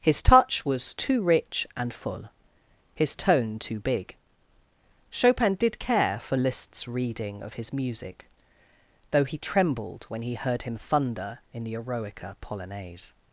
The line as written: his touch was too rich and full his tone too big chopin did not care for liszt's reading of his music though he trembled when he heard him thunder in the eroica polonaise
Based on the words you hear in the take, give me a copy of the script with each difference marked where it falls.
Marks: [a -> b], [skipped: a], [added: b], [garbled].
his touch was too rich and full his tone too big chopin did [skipped: not] care for liszt's reading of his music though he trembled when he heard him thunder in the eroica polonaise